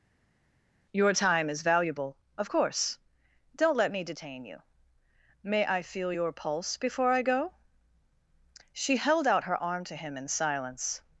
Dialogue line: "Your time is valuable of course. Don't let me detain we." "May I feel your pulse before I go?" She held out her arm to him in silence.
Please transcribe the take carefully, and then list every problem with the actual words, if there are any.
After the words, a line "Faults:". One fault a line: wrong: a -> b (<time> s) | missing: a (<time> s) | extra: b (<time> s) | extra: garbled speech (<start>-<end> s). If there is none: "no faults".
"Your time is valuable of course. Don't let me detain you." "May I feel your pulse before I go?" She held out her arm to him in silence.
Faults:
wrong: we -> you (4.4 s)